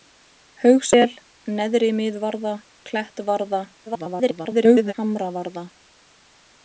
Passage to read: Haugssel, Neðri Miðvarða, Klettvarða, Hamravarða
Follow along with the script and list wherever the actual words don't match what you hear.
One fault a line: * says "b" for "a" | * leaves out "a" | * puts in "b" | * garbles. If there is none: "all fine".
* garbles